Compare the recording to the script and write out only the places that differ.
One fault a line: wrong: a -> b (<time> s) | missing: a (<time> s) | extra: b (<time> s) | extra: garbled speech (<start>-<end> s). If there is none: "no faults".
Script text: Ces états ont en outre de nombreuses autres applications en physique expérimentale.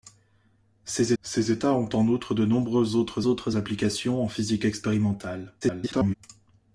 extra: ces (1.2 s)
extra: autres (3.3 s)
extra: garbled speech (5.6-6.1 s)